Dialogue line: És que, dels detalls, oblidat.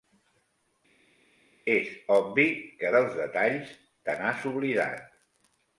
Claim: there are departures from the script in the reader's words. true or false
true